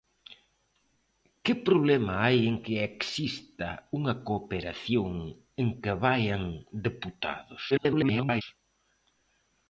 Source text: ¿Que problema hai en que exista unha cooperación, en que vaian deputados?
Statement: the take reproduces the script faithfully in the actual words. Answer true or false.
false